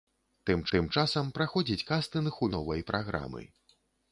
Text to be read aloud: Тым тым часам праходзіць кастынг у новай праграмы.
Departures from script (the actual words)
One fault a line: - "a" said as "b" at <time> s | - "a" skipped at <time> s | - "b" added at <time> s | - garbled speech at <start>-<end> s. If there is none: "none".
none